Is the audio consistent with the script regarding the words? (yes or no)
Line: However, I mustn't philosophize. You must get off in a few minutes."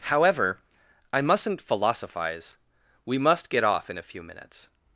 no